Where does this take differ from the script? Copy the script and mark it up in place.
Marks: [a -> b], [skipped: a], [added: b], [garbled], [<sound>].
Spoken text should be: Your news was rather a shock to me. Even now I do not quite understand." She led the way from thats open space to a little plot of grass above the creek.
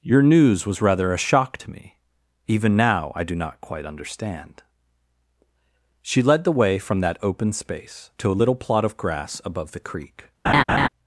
Your news was rather a shock to me. Even now I do not quite understand." She led the way from [thats -> that] open space to a little plot of grass above the creek. [laugh]